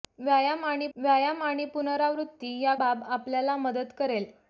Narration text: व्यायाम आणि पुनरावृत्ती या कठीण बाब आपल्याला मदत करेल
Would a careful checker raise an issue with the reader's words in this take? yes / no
yes